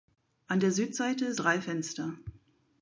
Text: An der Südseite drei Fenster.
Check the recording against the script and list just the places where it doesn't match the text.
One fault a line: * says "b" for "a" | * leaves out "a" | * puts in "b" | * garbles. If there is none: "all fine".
all fine